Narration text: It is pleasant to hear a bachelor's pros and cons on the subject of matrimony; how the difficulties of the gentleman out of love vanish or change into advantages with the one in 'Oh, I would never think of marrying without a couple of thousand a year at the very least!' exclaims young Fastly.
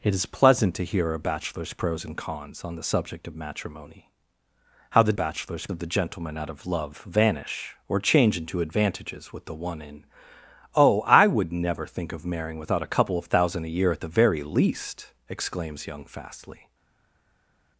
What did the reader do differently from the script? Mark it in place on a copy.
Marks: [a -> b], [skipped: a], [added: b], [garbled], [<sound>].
It is pleasant to hear a bachelor's pros and cons on the subject of matrimony; how the [difficulties -> bachelor's] of the gentleman out of love vanish or change into advantages with the one in 'Oh, I would never think of marrying without a couple of thousand a year at the very least!' exclaims young Fastly.